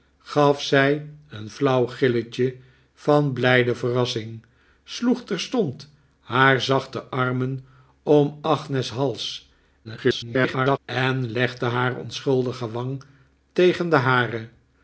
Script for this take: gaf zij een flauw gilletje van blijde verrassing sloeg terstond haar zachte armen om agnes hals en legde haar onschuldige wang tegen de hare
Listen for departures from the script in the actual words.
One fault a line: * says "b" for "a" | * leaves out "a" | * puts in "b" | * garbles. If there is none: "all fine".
* garbles